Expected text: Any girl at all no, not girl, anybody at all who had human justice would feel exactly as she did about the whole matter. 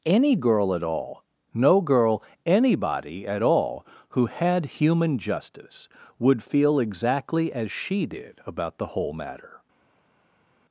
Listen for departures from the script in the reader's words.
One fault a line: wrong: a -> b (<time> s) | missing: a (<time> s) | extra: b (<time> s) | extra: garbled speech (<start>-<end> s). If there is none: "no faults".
missing: not (1.8 s)